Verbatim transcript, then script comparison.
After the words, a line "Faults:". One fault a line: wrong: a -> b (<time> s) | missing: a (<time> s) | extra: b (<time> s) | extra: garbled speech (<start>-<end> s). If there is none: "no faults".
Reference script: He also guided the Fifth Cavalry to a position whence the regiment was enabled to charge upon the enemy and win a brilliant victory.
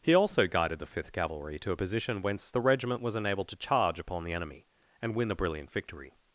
He also guided the Fifth Cavalry to a position whence the regiment was enabled to charge upon the enemy and win a brilliant victory.
Faults:
no faults